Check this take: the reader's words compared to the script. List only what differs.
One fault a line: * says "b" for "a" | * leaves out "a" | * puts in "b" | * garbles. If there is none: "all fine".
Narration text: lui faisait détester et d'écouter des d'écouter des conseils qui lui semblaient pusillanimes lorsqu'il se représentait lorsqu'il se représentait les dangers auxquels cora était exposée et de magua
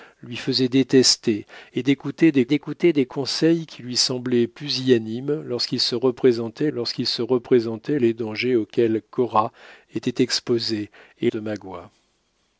all fine